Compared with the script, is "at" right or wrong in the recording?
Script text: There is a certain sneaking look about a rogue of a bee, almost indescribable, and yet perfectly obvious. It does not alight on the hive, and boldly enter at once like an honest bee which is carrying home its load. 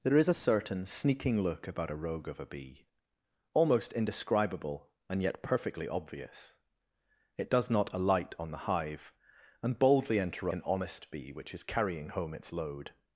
wrong